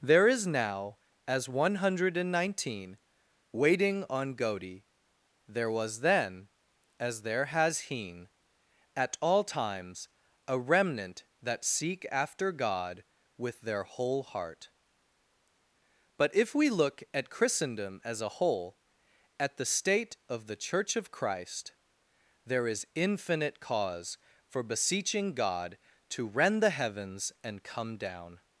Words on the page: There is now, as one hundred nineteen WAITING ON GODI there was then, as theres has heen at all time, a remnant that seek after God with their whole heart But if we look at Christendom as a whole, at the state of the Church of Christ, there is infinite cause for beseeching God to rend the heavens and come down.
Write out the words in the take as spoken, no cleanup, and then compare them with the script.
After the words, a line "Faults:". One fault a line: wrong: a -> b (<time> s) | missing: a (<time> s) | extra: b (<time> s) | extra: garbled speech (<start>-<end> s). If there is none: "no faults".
There is now, as one hundred nineteen WAITING ON GODI there was then, as there has heen at all times, a remnant that seek after God with their whole heart But if we look at Christendom as a whole, at the state of the Church of Christ, there is infinite cause for beseeching God to rend the heavens and come down.
Faults:
wrong: theres -> there (7.2 s)
wrong: time -> times (9.4 s)